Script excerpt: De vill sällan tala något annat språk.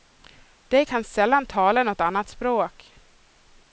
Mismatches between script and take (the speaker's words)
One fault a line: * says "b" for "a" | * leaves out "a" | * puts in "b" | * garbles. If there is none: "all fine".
* says "kan" for "vill"